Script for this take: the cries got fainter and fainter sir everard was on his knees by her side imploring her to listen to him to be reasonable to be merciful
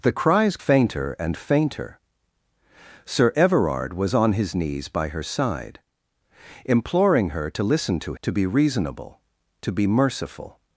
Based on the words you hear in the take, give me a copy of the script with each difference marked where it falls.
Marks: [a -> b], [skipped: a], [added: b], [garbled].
the cries [skipped: got] fainter and fainter sir everard was on his knees by her side imploring her to listen to [skipped: him] to be reasonable to be merciful